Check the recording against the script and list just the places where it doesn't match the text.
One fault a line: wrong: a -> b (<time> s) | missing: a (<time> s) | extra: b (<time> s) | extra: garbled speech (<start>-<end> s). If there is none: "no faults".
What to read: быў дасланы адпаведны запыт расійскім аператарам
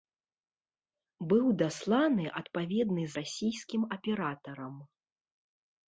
missing: запыт (3.0 s)